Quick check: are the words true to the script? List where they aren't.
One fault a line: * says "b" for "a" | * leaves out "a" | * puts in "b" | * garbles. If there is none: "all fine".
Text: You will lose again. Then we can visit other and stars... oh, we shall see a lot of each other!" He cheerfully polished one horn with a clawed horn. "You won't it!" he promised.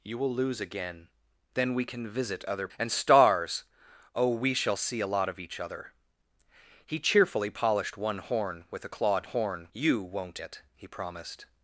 all fine